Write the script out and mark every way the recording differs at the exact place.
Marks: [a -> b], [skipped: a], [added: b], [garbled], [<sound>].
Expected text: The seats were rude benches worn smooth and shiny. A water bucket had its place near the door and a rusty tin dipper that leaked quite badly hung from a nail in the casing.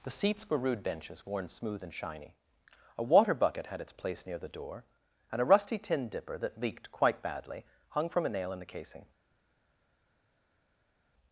The seats were rude benches worn smooth and shiny. A water bucket had its place near the door and a rusty tin dipper that leaked quite badly hung from a nail in the casing.